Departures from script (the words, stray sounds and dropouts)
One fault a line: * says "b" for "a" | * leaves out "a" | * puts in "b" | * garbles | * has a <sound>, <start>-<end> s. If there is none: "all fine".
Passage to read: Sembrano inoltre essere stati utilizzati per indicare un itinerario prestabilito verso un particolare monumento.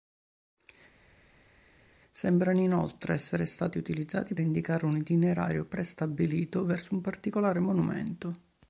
* leaves out "per"